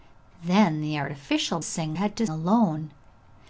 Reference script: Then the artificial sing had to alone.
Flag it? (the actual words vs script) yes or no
no